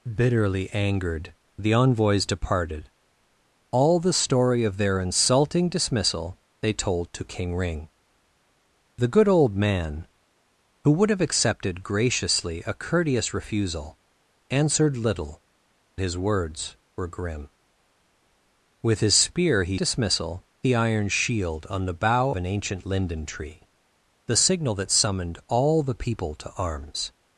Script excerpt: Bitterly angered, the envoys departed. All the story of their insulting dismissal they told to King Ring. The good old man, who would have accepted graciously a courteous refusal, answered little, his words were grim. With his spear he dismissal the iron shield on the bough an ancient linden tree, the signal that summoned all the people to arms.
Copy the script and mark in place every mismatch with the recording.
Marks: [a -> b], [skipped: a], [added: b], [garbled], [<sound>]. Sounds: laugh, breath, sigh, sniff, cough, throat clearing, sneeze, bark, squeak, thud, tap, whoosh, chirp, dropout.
Bitterly angered, the envoys departed. All the story of their insulting dismissal they told to King Ring. The good old man, who would have accepted graciously a courteous refusal, answered little, his words were grim. With his spear he dismissal the iron shield on the bough an ancient linden tree, the signal that summoned all the people to arms.